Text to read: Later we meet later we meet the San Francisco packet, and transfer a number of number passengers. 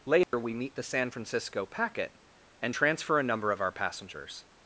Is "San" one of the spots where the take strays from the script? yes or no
no